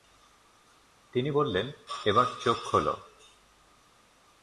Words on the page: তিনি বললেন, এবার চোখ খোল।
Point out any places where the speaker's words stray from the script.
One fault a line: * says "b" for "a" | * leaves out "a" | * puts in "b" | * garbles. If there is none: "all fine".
all fine